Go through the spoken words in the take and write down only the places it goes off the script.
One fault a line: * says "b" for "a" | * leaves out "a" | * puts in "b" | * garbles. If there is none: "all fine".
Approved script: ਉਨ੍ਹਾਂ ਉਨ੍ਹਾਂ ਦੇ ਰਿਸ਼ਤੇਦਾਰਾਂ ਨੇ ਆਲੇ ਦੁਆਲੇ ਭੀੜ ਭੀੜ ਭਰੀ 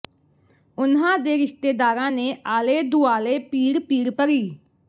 * leaves out "ਉਨ੍ਹਾਂ"